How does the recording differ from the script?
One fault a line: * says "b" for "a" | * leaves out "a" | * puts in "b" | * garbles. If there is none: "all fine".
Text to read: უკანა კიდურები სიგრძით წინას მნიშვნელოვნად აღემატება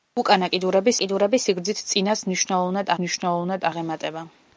* puts in "კიდურები"
* puts in "მნიშვნელოვნად"